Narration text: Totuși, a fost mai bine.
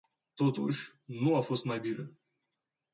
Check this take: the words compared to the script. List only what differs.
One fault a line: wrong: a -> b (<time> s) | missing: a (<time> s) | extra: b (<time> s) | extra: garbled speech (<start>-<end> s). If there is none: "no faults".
extra: nu (1.0 s)